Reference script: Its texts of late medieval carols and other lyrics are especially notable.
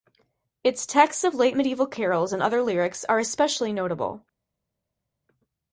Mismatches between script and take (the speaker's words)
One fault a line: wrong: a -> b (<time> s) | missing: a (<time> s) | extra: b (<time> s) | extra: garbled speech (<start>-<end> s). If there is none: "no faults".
no faults